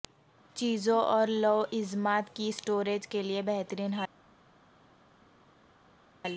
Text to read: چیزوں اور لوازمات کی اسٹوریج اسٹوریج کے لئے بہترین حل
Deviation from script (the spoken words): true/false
true